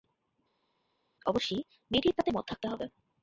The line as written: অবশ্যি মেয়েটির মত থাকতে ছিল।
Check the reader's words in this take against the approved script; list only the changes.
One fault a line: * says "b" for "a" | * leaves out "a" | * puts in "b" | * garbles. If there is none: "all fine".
* puts in "তাতে"
* says "হবে" for "ছিল"